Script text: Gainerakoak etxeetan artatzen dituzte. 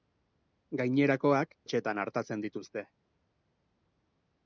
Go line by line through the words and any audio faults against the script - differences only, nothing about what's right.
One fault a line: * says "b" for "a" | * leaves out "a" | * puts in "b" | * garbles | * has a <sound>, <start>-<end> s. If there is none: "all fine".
all fine